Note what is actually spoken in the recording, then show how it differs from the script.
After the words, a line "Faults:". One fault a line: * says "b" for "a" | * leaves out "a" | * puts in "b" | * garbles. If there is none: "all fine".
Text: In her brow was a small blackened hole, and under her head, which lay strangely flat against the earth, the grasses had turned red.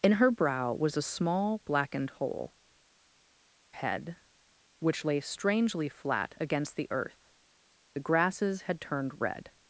In her brow was a small blackened hole, head, which lay strangely flat against the earth, the grasses had turned red.
Faults:
* leaves out "and under her"